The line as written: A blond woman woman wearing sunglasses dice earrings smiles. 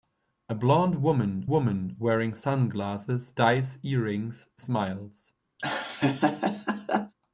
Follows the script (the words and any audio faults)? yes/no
no